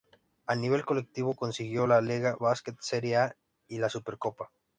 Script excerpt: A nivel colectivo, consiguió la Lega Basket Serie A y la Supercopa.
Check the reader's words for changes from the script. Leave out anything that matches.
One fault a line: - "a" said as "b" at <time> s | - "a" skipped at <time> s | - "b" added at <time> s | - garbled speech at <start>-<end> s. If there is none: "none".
none